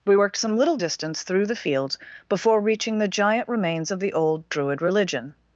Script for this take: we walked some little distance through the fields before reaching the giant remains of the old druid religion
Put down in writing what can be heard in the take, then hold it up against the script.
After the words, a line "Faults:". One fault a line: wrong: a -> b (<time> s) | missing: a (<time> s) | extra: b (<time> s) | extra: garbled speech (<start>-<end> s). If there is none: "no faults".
we worked some little distance through the fields before reaching the giant remains of the old druid religion
Faults:
wrong: walked -> worked (0.1 s)